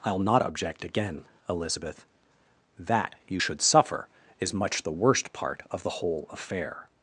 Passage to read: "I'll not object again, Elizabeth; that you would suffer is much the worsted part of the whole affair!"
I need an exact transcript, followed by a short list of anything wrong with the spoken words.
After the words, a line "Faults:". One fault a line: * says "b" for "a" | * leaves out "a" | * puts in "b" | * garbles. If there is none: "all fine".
"I'll not object again, Elizabeth; that you should suffer is much the worst part of the whole affair!"
Faults:
* says "should" for "would"
* says "worst" for "worsted"